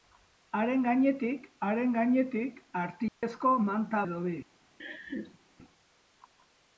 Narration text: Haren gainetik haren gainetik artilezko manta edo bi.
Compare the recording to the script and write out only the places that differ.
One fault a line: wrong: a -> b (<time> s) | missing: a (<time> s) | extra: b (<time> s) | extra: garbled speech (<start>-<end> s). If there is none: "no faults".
no faults